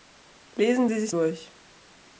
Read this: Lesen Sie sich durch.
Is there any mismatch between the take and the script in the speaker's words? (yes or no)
no